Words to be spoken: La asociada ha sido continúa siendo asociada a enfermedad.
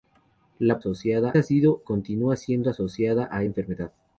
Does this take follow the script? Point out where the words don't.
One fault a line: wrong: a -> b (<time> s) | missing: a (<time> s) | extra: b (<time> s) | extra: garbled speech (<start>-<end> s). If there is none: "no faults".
no faults